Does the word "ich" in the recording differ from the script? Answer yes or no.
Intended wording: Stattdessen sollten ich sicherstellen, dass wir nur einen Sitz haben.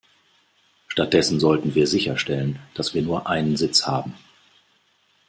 yes